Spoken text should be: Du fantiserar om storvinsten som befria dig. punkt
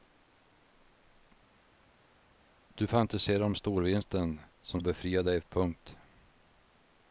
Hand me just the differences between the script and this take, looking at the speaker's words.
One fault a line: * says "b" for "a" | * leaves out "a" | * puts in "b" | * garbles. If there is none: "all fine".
all fine